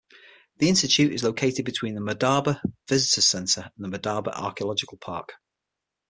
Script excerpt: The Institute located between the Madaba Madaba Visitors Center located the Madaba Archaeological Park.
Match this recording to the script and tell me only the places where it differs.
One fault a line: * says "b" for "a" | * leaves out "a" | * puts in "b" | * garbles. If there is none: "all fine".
* puts in "is"
* leaves out "Madaba"
* says "and" for "located"